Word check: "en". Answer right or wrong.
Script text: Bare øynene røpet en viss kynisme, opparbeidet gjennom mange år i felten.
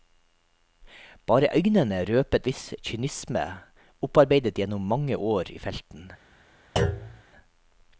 wrong